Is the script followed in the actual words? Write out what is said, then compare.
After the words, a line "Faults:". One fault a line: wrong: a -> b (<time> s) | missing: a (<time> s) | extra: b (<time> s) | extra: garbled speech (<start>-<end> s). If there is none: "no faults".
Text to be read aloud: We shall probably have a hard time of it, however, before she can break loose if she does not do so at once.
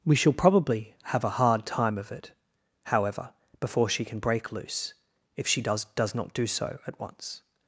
We shall probably have a hard time of it, however, before she can break loose if she does does not do so at once.
Faults:
extra: does (6.0 s)